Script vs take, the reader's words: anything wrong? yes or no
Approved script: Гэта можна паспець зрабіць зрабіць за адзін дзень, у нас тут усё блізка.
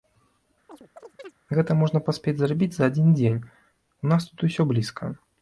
yes